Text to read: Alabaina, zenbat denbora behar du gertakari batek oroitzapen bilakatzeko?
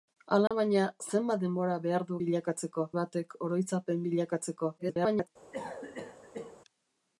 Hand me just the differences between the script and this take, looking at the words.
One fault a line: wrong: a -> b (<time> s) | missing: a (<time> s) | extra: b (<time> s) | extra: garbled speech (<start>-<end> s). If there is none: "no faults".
wrong: gertakari -> bilakatzeko (2.2 s)
extra: garbled speech (4.8-5.3 s)